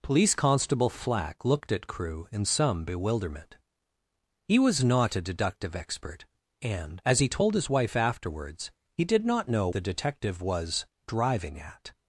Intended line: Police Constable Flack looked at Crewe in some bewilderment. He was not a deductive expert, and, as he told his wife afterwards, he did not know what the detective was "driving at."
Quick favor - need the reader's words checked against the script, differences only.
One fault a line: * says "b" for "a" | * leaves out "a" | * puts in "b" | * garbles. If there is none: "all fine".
* leaves out "what"